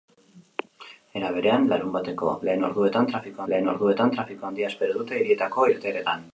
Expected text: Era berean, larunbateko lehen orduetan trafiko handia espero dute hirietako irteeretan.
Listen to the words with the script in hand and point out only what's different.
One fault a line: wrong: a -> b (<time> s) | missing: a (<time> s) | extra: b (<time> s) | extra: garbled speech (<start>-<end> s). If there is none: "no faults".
extra: lehen orduetan trafiko (3.5 s)